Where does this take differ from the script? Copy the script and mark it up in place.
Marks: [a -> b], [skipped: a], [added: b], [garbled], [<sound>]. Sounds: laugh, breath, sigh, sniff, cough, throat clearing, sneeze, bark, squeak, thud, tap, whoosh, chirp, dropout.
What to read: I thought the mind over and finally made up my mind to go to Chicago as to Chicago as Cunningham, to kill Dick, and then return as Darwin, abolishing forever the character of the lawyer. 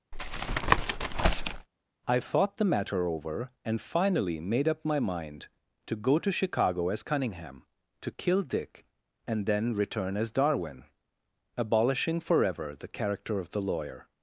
[tap] I thought the [mind -> matter] over and finally made up my mind to go to Chicago as [skipped: to Chicago as] Cunningham, to kill Dick, and then return as Darwin, abolishing forever the character of the lawyer.